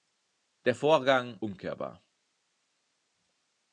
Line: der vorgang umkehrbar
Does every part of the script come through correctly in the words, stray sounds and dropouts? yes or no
yes